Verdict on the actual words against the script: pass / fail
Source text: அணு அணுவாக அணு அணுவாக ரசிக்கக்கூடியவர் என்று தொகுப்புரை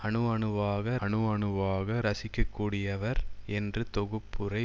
pass